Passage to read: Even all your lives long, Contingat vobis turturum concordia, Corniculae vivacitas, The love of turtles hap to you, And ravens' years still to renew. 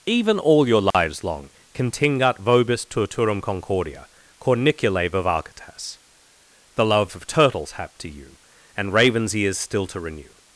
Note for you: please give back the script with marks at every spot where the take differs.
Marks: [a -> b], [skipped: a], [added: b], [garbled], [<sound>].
Even all your lives [dropout] long, Contingat vobis turturum concordia, Corniculae vivacitas, The love of turtles hap to you, And ravens' [years -> ears] still to renew.